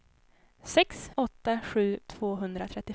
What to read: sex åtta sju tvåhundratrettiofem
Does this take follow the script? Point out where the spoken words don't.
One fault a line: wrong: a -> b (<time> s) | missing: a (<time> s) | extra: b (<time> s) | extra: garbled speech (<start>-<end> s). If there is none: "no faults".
no faults